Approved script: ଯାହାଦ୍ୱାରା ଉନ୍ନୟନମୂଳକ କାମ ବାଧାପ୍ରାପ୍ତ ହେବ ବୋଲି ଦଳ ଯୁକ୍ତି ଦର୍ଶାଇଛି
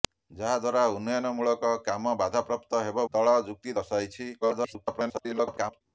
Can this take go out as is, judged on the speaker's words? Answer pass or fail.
fail